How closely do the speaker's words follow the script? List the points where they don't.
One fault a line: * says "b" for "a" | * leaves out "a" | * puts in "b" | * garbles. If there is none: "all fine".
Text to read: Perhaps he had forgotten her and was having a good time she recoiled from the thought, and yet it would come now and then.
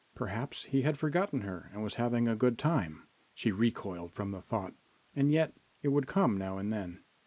all fine